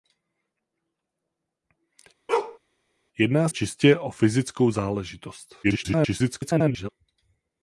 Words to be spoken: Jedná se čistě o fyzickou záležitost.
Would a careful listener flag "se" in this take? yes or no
yes